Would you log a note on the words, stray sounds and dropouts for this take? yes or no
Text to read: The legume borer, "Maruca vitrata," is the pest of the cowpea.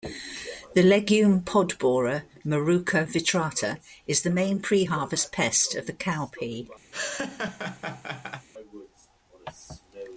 yes